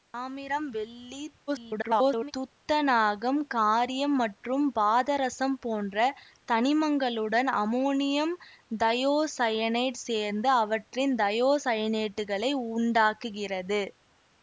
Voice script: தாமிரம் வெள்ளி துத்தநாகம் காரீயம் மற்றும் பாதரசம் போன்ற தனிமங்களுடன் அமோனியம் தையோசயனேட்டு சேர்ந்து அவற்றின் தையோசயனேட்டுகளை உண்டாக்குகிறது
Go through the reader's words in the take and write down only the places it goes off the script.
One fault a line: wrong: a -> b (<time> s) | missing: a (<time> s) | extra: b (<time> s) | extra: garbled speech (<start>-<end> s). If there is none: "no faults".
extra: garbled speech (1.5-2.3 s)